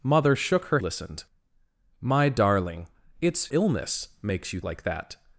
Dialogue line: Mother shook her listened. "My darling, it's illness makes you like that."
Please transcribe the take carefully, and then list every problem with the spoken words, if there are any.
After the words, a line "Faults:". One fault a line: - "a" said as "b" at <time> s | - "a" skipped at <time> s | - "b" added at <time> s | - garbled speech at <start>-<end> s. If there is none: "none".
Mother shook her listened. "My darling, it's illness makes you like that."
Faults:
none